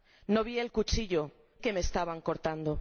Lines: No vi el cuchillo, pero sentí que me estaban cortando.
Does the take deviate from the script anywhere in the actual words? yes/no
yes